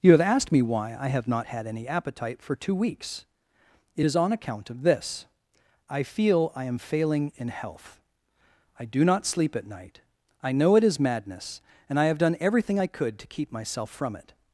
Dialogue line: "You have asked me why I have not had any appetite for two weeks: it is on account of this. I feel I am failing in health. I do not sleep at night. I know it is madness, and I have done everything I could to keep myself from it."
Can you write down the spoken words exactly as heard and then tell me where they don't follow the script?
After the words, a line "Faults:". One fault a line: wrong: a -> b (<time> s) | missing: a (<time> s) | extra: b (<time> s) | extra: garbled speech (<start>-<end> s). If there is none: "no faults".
"You have asked me why I have not had any appetite for two weeks: it is on account of this. I feel I am failing in health. I do not sleep at night. I know it is madness, and I have done everything I could to keep myself from it."
Faults:
no faults